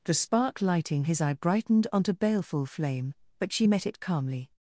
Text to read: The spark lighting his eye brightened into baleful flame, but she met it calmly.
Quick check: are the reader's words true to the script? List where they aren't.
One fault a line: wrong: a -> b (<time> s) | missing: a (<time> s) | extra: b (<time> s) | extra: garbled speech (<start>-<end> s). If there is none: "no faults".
wrong: into -> onto (1.9 s)